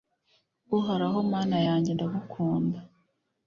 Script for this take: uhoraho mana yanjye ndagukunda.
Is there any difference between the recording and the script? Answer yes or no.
no